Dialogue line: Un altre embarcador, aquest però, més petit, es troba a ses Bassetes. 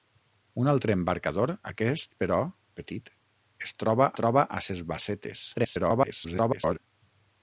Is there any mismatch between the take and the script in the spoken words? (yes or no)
yes